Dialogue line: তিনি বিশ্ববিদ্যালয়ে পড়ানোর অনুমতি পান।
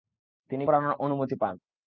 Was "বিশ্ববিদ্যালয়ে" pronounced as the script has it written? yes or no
no